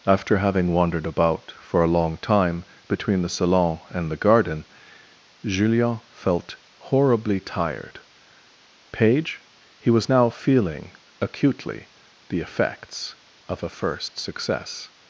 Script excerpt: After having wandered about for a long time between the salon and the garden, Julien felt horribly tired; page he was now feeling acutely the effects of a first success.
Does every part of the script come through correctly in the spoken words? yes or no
yes